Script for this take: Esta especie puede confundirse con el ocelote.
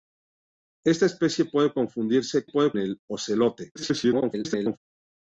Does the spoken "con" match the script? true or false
false